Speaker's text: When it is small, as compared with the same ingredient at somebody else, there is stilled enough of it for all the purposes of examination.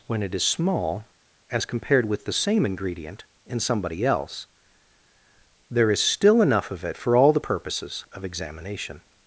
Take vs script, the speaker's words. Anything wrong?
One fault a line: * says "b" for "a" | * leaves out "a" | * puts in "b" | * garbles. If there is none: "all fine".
* says "in" for "at"
* says "still" for "stilled"